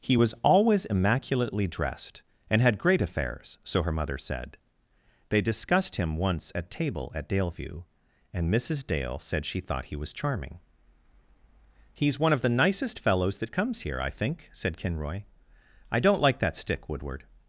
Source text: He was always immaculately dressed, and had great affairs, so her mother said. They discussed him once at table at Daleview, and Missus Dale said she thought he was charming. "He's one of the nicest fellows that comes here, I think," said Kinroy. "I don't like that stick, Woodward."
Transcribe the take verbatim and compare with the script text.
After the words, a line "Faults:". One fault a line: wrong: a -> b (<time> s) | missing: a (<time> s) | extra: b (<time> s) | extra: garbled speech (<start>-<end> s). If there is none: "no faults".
He was always immaculately dressed, and had great affairs, so her mother said. They discussed him once at table at Daleview, and Missus Dale said she thought he was charming. "He's one of the nicest fellows that comes here, I think," said Kinroy. "I don't like that stick, Woodward."
Faults:
no faults